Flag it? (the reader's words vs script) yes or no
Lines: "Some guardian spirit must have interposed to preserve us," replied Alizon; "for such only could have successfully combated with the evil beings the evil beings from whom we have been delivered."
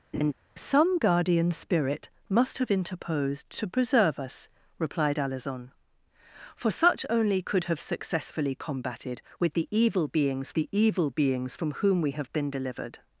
no